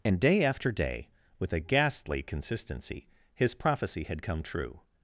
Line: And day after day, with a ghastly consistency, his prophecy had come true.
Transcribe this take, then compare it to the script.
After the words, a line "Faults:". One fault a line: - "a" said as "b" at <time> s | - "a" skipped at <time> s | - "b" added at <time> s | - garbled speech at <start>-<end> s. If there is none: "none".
And day after day, with a ghastly consistency, his prophecy had come true.
Faults:
none